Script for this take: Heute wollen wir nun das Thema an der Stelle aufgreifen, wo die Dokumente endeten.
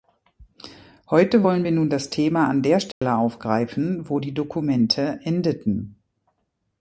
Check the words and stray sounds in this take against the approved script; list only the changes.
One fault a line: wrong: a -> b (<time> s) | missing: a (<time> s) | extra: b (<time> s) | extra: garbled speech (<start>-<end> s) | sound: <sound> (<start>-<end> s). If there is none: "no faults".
sound: dropout (2.9-3.0 s)